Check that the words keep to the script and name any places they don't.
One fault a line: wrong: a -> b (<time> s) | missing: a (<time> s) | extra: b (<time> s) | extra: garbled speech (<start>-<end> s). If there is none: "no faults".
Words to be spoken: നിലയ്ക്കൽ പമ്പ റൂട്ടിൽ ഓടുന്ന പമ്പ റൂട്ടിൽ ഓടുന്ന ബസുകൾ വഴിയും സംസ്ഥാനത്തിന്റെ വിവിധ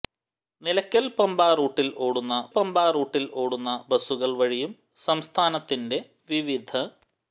no faults